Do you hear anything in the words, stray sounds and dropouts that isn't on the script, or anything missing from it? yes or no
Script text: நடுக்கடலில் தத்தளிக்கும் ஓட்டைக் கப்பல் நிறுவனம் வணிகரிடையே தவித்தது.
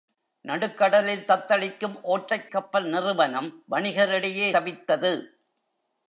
no